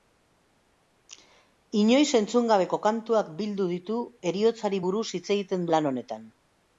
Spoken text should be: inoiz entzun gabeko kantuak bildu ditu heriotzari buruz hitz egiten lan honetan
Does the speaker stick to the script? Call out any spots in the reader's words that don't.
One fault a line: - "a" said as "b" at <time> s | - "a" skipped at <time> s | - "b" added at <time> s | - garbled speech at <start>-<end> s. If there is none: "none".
none